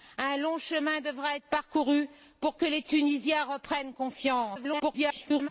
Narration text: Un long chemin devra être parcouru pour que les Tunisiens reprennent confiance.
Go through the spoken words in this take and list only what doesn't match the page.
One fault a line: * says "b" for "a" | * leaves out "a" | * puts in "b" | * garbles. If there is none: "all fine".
* garbles